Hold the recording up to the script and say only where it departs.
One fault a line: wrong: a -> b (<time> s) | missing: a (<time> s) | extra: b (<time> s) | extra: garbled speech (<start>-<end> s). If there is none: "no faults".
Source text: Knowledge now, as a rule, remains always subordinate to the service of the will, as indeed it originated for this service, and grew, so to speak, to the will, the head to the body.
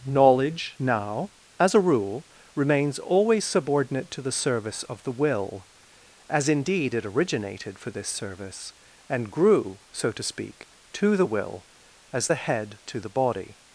extra: as (12.1 s)